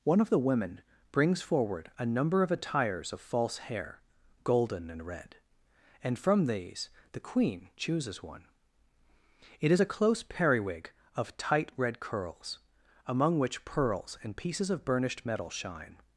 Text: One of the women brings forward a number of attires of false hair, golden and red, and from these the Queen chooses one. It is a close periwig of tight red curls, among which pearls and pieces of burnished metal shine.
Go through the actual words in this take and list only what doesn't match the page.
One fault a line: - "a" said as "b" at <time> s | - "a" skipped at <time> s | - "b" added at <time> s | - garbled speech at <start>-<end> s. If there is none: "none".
none